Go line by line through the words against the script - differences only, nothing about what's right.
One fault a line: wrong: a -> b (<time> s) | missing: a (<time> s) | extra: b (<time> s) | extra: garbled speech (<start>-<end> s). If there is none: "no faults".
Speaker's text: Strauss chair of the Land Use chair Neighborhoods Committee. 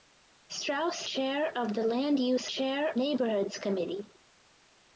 no faults